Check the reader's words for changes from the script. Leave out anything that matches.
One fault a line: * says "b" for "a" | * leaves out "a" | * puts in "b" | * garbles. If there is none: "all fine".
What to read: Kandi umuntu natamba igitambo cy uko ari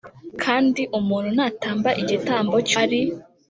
* leaves out "uko"